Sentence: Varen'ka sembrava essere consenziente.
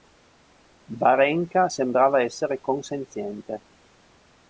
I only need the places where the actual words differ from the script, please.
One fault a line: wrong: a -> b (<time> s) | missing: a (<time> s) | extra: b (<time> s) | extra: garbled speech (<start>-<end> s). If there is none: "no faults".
no faults